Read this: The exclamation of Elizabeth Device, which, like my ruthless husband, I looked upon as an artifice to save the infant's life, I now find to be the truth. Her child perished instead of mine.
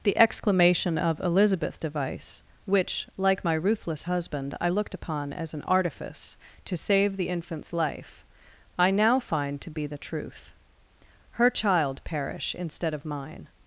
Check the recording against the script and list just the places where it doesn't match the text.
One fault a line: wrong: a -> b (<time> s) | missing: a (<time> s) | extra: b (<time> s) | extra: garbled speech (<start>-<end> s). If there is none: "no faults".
wrong: perished -> perish (12.0 s)